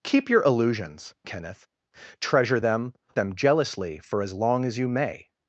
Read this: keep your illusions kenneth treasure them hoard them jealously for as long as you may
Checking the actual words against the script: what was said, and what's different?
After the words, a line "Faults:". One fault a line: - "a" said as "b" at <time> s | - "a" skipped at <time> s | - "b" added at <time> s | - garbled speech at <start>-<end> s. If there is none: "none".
keep your illusions kenneth treasure them them jealously for as long as you may
Faults:
- "hoard" skipped at 2.9 s